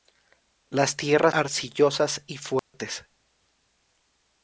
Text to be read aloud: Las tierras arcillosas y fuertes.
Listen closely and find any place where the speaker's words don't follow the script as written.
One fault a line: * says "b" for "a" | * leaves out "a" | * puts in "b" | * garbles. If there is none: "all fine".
all fine